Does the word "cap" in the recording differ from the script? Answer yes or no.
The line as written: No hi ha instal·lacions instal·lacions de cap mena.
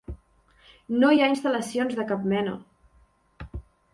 no